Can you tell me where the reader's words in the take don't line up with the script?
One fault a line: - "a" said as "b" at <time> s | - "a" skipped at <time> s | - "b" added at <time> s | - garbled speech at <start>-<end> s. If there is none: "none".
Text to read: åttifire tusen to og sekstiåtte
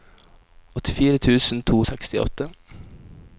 none